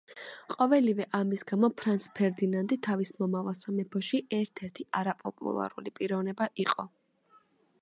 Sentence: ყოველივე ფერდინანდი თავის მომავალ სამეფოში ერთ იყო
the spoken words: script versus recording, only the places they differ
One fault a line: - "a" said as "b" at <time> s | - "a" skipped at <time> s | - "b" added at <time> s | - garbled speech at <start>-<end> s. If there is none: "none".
- "ამის გამო ფრანც" added at 1.2 s
- "ერთი არაპოპულარული პიროვნება" added at 4.7 s